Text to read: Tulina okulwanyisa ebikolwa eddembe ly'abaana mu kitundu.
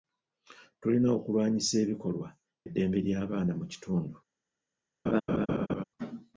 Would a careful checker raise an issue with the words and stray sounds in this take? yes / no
yes